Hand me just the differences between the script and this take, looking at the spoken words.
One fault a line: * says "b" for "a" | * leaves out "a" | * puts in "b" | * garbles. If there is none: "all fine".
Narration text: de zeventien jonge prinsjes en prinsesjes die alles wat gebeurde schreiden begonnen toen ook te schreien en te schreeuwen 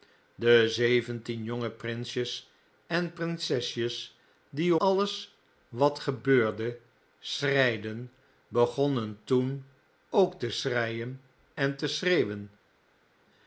all fine